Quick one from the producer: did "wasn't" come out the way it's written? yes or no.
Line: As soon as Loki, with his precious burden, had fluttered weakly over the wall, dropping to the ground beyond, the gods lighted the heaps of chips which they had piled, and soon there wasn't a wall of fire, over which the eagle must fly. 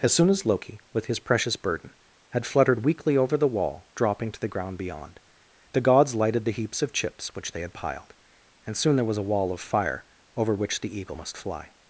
no